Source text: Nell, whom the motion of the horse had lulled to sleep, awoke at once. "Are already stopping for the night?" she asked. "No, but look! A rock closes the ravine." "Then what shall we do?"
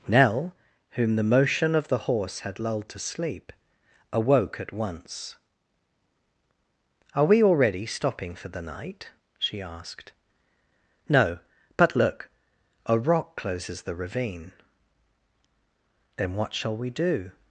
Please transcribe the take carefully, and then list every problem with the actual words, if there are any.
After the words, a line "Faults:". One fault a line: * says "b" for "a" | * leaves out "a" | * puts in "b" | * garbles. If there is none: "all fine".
Nell, whom the motion of the horse had lulled to sleep, awoke at once. "Are we already stopping for the night?" she asked. "No, but look! A rock closes the ravine." "Then what shall we do?"
Faults:
* puts in "we"